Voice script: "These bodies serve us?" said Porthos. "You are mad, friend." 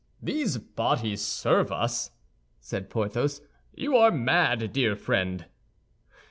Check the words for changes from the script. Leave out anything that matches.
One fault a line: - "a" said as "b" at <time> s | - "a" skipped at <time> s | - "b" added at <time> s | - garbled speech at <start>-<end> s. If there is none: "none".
- "dear" added at 4.7 s